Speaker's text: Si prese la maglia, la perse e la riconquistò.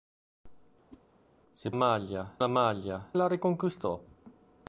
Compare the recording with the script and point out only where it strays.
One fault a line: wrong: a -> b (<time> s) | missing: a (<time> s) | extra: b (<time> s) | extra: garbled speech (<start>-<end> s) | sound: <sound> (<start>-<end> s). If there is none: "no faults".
sound: whoosh (0.9-1.0 s)
wrong: prese -> maglia (1.7 s)
missing: la perse (3.1 s)